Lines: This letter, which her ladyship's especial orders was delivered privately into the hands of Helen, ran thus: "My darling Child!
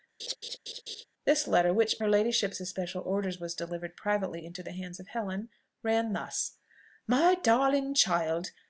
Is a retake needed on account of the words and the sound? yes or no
yes